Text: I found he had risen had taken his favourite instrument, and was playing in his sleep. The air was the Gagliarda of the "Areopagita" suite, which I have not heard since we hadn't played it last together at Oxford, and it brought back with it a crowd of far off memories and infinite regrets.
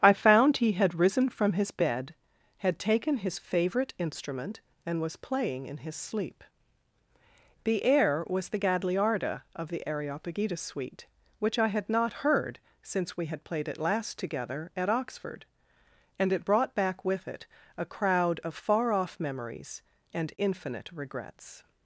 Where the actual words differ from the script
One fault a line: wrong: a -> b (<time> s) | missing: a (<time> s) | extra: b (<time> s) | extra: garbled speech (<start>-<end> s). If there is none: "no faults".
extra: from his bed (1.3 s)
wrong: have -> had (11.7 s)
wrong: hadn't -> had (13.3 s)